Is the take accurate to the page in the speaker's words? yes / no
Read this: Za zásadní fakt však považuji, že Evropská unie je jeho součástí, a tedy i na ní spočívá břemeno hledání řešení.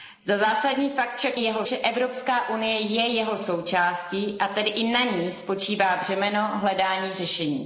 no